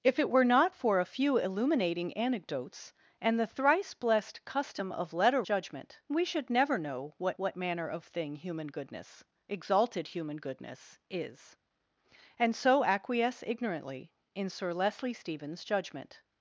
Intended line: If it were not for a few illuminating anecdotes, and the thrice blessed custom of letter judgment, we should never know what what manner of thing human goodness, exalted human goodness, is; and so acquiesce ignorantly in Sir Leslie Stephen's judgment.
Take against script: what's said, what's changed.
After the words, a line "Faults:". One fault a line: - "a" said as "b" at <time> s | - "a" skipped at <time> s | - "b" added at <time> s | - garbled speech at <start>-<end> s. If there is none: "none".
If it were not for a few illuminating anecdotes, and the thrice blessed custom of letter judgment, we should never know what what manner of thing human goodness, exalted human goodness, is; and so acquiesce ignorantly in Sir Leslie Stephen's judgment.
Faults:
none